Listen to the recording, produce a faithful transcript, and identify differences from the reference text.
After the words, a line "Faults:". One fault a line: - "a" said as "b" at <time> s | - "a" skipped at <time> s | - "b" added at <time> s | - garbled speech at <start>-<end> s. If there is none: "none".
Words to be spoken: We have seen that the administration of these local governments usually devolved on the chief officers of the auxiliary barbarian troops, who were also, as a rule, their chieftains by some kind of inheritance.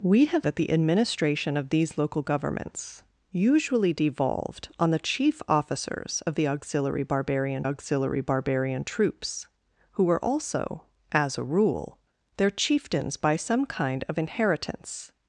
We have that the administration of these local governments usually devolved on the chief officers of the auxiliary barbarian auxiliary barbarian troops, who were also, as a rule, their chieftains by some kind of inheritance.
Faults:
- "seen" skipped at 0.5 s
- "auxiliary barbarian" added at 7.6 s